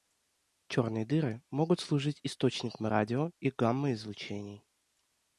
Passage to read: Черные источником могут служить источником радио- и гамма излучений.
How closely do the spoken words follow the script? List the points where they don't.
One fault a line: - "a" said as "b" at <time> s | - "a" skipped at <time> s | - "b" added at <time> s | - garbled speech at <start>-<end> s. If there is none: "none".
- "источником" said as "дыры" at 1.1 s